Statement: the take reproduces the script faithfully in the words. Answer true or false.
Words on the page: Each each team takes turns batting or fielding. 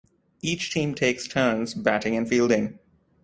false